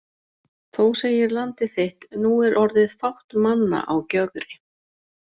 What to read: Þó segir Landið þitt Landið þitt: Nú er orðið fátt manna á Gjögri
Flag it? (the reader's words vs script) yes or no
yes